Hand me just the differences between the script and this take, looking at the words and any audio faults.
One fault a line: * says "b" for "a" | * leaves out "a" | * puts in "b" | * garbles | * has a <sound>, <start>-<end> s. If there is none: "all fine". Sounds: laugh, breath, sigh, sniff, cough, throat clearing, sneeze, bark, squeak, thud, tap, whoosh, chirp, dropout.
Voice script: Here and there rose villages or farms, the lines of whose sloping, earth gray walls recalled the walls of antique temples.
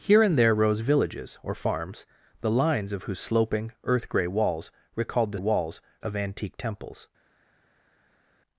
all fine